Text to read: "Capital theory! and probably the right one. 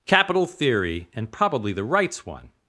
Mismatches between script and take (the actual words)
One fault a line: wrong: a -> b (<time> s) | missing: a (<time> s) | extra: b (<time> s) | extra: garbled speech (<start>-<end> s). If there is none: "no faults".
wrong: right -> rights (1.8 s)